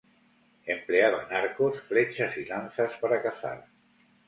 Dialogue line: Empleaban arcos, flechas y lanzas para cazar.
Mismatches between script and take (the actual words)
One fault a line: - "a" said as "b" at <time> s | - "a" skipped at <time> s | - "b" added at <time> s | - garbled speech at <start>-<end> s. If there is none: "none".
none